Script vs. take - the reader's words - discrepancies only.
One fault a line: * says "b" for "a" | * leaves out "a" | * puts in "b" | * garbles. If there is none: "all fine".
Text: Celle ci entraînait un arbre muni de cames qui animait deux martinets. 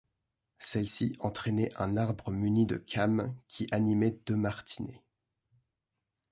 all fine